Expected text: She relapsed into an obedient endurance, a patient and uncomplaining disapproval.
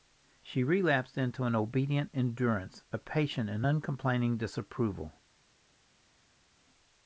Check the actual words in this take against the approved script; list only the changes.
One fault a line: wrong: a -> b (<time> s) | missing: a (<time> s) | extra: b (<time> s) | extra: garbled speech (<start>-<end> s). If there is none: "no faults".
no faults